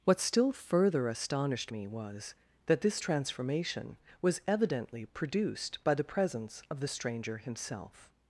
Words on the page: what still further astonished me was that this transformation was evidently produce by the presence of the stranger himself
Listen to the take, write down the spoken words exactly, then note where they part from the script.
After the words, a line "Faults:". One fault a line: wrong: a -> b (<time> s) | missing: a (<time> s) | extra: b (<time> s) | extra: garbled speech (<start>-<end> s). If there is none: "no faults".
what still further astonished me was that this transformation was evidently produced by the presence of the stranger himself
Faults:
wrong: produce -> produced (5.0 s)